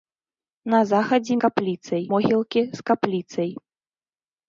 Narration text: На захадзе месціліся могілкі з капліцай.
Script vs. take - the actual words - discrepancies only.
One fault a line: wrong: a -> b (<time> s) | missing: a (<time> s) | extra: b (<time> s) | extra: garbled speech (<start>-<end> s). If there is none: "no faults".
wrong: месціліся -> капліцай (1.4 s)